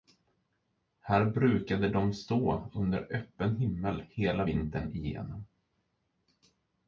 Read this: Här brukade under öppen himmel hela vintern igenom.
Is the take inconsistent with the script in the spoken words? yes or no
yes